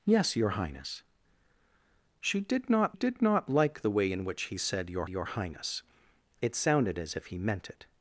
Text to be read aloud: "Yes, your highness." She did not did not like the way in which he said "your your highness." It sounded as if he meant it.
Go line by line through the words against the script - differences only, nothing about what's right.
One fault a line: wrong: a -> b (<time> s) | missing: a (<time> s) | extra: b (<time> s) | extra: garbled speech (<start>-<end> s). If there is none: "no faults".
no faults